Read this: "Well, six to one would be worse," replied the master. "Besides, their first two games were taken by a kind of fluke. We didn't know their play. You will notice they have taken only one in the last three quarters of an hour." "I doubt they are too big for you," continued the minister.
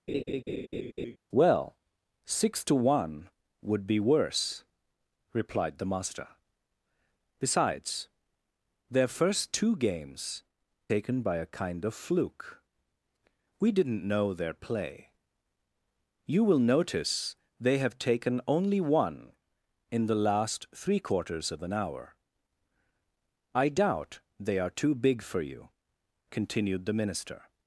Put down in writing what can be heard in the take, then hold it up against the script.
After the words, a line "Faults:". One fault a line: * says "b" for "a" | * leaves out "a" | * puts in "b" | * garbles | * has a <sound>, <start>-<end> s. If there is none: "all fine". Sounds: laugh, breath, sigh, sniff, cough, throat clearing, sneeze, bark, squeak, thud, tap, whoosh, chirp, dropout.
"Well, six to one would be worse," replied the master. "Besides, their first two games taken by a kind of fluke. We didn't know their play. You will notice they have taken only one in the last three quarters of an hour." "I doubt they are too big for you," continued the minister.
Faults:
* has a laugh, 0.1-1.2 s
* leaves out "were"